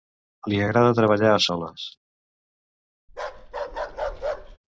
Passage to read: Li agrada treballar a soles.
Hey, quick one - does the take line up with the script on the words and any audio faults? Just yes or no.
no